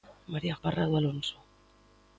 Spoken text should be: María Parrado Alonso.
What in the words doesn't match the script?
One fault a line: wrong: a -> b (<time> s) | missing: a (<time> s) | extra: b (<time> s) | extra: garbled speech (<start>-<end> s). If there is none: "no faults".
no faults